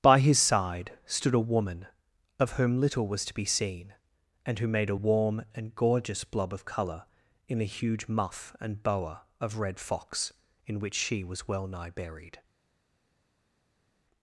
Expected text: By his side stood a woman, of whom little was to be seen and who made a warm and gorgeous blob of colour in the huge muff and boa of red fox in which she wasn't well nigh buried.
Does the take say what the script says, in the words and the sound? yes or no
no